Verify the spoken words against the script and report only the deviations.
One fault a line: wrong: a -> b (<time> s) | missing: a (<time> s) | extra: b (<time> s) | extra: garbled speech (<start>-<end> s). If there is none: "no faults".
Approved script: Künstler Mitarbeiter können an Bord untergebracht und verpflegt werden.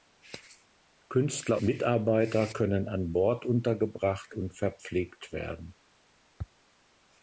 no faults